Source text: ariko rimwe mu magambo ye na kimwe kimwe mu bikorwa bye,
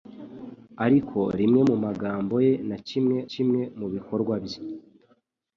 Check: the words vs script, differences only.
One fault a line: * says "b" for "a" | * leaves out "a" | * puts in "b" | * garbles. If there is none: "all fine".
all fine